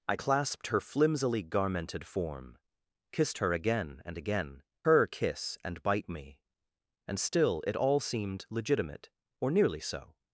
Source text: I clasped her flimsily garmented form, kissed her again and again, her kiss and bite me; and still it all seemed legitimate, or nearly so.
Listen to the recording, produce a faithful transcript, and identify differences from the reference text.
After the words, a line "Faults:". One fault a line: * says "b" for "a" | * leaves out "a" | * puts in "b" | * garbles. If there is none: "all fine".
I clasped her flimsily garmented form, kissed her again and again, her kiss and bite me; and still it all seemed legitimate, or nearly so.
Faults:
all fine